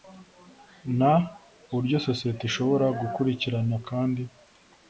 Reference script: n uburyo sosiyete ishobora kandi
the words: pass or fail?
fail